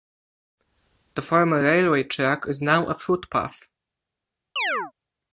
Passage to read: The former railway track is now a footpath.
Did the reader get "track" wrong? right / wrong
right